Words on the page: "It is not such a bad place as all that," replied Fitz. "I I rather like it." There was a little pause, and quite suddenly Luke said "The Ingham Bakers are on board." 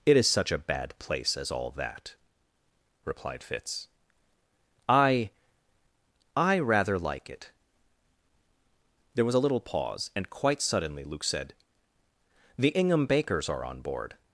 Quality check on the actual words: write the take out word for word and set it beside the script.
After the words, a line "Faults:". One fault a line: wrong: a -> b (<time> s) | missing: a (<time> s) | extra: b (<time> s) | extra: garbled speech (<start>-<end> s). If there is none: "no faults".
"It is such a bad place as all that," replied Fitz. "I I rather like it." There was a little pause, and quite suddenly Luke said "The Ingham Bakers are on board."
Faults:
missing: not (0.3 s)